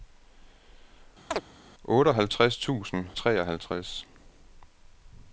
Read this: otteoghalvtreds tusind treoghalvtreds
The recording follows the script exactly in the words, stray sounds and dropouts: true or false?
false